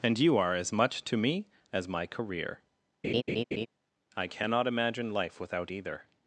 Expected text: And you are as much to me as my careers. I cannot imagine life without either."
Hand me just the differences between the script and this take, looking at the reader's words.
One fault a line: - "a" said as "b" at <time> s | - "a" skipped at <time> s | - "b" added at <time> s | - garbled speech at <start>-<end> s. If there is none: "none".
- "careers" said as "career" at 2.1 s